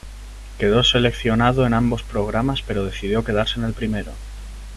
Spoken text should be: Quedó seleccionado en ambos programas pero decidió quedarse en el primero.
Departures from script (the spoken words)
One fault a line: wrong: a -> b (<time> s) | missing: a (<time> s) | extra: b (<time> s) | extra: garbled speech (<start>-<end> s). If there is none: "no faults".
no faults